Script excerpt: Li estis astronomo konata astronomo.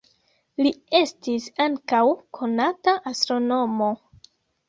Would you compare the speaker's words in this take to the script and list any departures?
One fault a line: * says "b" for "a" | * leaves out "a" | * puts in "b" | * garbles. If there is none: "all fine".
* says "ankaŭ" for "astronomo"